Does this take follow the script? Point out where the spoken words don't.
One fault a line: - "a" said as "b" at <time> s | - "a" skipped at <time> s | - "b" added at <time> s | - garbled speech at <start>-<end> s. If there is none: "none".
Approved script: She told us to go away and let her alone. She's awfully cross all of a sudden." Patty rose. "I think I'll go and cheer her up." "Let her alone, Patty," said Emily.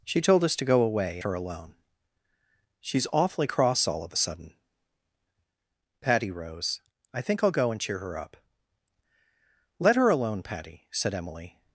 - "and let" skipped at 1.2 s